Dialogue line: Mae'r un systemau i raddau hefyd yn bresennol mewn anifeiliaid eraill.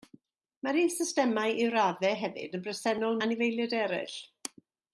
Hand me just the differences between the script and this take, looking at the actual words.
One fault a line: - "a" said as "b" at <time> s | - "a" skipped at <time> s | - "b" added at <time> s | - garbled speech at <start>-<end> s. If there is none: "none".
- "mewn" skipped at 3.2 s